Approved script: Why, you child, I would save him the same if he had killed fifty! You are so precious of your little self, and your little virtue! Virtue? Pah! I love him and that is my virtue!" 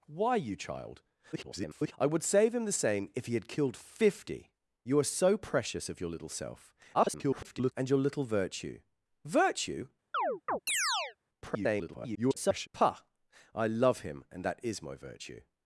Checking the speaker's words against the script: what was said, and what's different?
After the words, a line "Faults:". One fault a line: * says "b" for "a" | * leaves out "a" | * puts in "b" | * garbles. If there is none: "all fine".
Why, you child, [garbled] I would save him the same if he had killed fifty! You are so precious of your little self, [garbled] and your little virtue! Virtue? [garbled] Pah! I love him and that is my virtue!"
Faults:
* garbles
* garbles
* garbles